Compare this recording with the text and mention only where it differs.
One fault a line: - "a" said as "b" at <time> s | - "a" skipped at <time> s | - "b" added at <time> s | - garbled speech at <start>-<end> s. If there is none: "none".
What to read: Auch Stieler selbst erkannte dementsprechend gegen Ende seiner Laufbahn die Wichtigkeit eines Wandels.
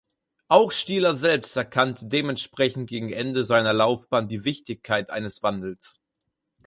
none